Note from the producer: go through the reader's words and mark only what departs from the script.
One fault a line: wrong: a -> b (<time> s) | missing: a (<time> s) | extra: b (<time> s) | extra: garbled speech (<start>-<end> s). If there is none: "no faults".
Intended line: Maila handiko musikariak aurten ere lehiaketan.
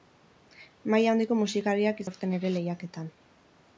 no faults